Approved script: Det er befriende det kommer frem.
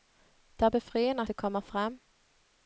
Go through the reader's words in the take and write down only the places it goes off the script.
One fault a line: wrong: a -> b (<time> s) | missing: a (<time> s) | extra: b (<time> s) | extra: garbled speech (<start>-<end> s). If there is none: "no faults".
no faults